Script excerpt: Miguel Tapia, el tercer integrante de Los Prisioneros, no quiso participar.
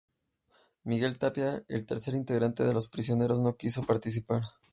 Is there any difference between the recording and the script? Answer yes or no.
no